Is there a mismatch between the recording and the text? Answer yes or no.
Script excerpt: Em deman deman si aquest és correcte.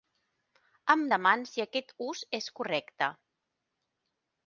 yes